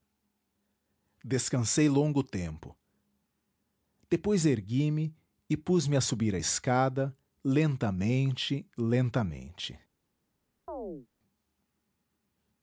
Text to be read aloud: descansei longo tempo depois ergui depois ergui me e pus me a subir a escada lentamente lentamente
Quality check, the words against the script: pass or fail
fail